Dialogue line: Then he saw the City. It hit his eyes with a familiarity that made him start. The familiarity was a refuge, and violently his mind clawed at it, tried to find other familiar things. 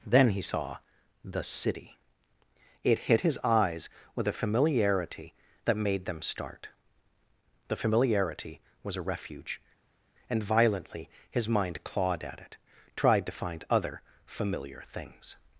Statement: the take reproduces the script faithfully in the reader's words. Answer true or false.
false